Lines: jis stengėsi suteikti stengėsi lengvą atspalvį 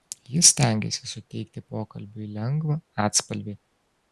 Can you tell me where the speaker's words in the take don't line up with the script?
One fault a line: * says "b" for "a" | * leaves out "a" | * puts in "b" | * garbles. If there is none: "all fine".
* says "pokalbiui" for "stengėsi"